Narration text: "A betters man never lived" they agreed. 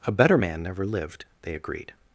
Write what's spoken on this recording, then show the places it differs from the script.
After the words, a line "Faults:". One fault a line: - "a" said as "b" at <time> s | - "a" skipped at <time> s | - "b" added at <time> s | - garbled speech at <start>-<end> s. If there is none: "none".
"A better man never lived" they agreed.
Faults:
- "betters" said as "better" at 0.1 s